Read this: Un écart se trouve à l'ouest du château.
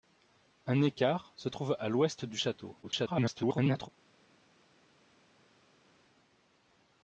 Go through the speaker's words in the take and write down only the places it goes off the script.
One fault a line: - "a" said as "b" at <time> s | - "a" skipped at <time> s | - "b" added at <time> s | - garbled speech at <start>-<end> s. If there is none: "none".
- garbled speech at 2.8-3.9 s